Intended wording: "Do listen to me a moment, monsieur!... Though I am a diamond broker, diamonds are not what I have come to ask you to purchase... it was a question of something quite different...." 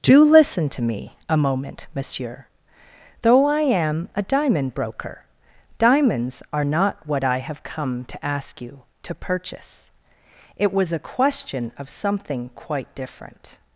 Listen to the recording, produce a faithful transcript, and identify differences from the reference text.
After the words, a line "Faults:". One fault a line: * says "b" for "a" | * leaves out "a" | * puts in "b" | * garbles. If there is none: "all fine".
"Do listen to me a moment, monsieur!... Though I am a diamond broker, diamonds are not what I have come to ask you to purchase... it was a question of something quite different...."
Faults:
all fine